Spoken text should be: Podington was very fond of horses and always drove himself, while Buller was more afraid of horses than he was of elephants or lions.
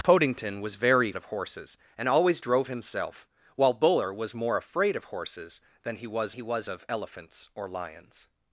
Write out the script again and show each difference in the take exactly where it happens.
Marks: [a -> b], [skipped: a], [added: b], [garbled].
Podington was very [skipped: fond] of horses and always drove himself, while Buller was more afraid of horses than he was [added: he was] of elephants or lions.